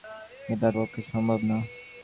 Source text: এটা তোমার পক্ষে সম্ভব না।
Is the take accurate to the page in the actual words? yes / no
no